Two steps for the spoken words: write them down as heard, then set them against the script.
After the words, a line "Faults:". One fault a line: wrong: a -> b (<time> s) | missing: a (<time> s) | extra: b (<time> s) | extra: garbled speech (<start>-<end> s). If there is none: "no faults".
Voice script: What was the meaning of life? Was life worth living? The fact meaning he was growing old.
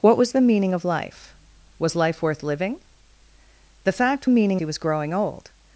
What was the meaning of life? Was life worth living? The fact meaning he was growing old.
Faults:
no faults